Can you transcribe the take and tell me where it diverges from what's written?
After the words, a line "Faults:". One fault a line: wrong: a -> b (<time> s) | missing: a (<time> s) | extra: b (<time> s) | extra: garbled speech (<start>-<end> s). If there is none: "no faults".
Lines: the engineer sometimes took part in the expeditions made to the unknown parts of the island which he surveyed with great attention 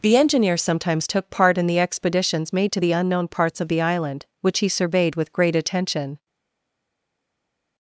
the engineer sometimes took part in the expeditions made to the unknown parts of the island which he surveyed with great attention
Faults:
no faults